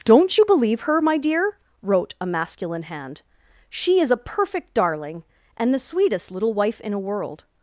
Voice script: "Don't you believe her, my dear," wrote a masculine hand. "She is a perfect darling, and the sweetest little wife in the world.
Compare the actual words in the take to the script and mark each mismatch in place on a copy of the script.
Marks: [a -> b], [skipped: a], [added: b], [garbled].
"Don't you believe her, my dear," wrote a masculine hand. "She is a perfect darling, and the sweetest little wife in [the -> a] world.